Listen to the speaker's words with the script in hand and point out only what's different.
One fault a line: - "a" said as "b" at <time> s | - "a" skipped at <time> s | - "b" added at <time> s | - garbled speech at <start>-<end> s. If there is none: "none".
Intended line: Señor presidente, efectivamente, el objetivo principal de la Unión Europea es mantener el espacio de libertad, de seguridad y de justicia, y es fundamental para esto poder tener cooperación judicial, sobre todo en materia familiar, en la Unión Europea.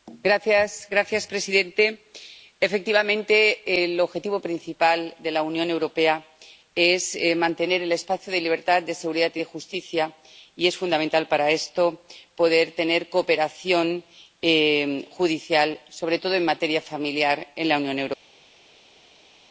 none